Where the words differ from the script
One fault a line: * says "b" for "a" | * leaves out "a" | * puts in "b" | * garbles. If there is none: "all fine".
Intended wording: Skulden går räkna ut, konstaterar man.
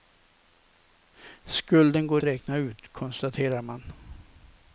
all fine